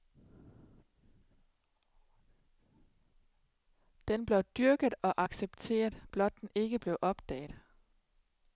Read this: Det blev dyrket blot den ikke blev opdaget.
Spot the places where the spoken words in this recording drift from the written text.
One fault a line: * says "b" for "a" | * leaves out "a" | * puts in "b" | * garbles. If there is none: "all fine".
* says "Den" for "Det"
* puts in "og accepteret"